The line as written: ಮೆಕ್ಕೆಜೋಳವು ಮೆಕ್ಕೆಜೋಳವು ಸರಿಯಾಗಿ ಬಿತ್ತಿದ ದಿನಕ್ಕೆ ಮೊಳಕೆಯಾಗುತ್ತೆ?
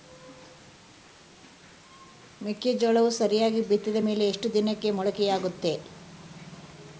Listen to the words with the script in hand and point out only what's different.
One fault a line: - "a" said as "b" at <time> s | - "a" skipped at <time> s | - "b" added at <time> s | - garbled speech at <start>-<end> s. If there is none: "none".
- "ಮೆಕ್ಕೆಜೋಳವು" skipped at 3.1 s
- "ಮೇಲೆ ಎಷ್ಟು" added at 4.0 s